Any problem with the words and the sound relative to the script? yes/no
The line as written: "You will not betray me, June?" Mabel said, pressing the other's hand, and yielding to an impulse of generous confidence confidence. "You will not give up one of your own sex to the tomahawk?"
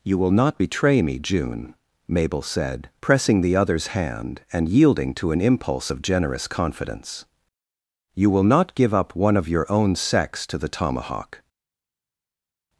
yes